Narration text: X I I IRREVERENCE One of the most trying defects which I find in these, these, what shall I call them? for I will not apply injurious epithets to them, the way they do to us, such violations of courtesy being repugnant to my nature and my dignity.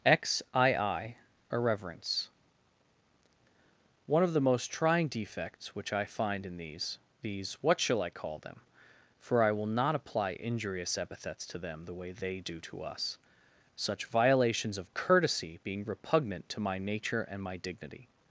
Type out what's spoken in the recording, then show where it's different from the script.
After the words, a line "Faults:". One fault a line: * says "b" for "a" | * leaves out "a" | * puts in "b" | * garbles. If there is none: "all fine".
X I I IRREVERENCE One of the most trying defects which I find in these, these, what shall I call them? for I will not apply injurious epithets to them, the way they do to us, such violations of courtesy being repugnant to my nature and my dignity.
Faults:
all fine